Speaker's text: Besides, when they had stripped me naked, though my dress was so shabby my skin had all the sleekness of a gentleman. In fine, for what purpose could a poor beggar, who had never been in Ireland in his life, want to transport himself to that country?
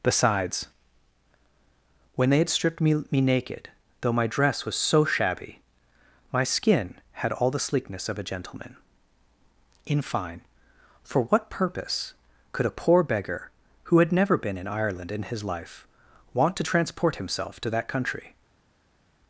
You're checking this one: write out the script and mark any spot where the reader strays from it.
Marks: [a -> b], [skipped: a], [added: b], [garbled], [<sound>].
Besides, when they had stripped me [added: me] naked, though my dress was so shabby my skin had all the sleekness of a gentleman. In fine, for what purpose could a poor beggar, who had never been in Ireland in his life, want to transport himself to that country?